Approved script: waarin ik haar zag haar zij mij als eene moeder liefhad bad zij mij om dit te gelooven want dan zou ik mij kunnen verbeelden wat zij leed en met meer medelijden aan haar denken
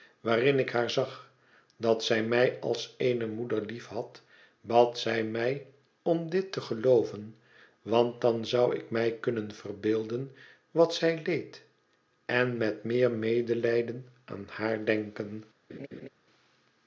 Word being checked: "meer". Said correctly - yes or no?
yes